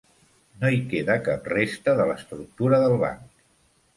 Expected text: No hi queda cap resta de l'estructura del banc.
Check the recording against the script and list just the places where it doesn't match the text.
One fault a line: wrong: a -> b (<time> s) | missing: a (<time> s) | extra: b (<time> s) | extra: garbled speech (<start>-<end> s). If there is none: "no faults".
no faults